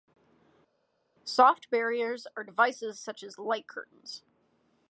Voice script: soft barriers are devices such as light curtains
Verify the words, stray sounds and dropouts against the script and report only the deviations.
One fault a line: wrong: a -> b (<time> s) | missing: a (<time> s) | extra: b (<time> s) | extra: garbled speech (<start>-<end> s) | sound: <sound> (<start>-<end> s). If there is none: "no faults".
no faults